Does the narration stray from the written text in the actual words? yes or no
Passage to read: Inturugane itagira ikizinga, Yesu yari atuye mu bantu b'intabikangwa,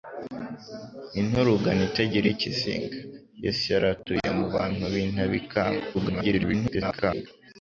yes